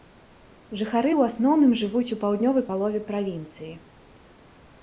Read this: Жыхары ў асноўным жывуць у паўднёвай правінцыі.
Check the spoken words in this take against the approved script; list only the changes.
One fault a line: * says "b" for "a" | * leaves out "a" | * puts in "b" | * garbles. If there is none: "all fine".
* puts in "палове"